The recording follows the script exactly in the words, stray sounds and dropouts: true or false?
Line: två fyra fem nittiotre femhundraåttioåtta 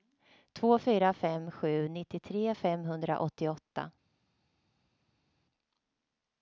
false